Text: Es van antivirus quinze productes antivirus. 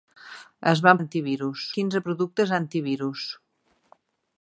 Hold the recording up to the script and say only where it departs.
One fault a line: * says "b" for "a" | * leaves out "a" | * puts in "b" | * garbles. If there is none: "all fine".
all fine